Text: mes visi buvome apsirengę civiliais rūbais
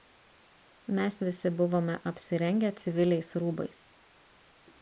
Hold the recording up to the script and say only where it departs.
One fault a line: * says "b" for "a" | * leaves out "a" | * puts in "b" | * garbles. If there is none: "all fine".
all fine